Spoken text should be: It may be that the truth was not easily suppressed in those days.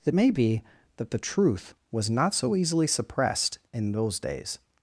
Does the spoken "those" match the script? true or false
true